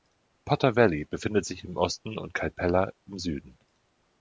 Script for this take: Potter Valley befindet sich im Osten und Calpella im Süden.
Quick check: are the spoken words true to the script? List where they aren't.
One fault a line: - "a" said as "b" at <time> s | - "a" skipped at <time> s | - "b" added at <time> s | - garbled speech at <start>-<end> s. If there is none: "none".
none